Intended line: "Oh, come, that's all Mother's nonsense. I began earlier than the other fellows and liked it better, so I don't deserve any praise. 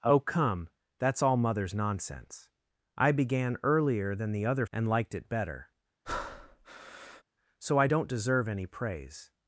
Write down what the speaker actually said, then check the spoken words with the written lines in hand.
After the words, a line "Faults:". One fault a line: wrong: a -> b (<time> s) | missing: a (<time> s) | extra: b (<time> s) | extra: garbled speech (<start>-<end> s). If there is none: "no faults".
"Oh, come, that's all Mother's nonsense. I began earlier than the other and liked it better, so I don't deserve any praise.
Faults:
missing: fellows (4.7 s)